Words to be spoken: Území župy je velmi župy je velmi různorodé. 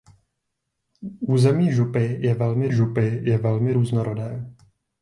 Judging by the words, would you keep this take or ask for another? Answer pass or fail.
pass